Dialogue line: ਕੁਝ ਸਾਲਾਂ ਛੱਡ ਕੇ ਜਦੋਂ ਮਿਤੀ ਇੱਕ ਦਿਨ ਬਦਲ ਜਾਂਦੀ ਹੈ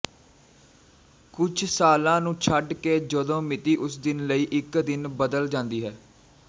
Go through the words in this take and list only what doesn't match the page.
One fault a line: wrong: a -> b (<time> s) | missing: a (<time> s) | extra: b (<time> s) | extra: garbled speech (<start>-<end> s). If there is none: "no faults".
extra: ਨੂੰ (2.2 s)
extra: ਉਸ ਦਿਨ ਲਈ (3.8 s)